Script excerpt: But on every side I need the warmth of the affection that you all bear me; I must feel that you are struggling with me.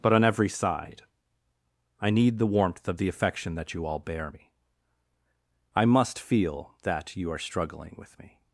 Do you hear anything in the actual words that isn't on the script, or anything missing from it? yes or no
no